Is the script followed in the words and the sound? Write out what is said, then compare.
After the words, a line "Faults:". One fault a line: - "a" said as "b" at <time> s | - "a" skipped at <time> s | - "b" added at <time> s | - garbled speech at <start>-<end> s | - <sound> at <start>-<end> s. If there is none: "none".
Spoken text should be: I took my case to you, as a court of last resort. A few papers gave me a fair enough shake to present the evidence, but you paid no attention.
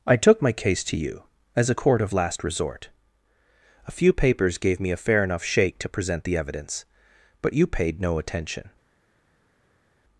I took my case to you, as a court of last resort. A few papers gave me a fair enough shake to present the evidence, but you paid no attention.
Faults:
none